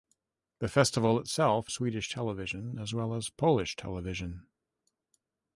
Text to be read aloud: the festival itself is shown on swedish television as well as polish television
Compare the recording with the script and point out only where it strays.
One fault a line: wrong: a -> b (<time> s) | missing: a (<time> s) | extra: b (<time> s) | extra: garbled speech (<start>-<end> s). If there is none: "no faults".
missing: is shown on (1.7 s)